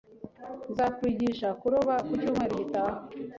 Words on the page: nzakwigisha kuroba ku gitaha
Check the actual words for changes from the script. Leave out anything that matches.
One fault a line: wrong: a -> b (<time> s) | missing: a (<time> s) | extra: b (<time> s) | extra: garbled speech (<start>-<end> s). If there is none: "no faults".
extra: cyumweru (2.2 s)